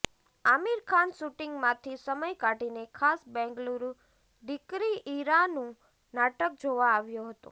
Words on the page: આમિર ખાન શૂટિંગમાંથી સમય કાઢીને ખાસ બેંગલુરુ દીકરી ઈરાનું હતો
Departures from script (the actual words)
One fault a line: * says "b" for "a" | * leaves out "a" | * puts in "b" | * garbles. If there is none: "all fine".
* puts in "નાટક જોવા આવ્યો"